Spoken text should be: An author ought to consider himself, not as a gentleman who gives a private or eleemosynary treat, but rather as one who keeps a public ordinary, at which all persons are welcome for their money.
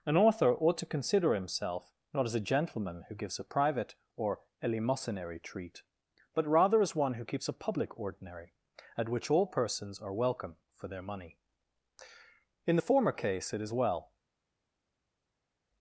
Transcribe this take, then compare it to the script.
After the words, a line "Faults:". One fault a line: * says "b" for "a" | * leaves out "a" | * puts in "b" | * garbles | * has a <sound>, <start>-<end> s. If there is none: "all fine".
An author ought to consider himself, not as a gentleman who gives a private or eleemosynary treat, but rather as one who keeps a public ordinary, at which all persons are welcome for their money. In the former case, it is well
Faults:
* puts in "In the former case it is well"